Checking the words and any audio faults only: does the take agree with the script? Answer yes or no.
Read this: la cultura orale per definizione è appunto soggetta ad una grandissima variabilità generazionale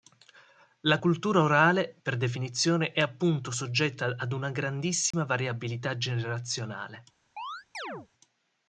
no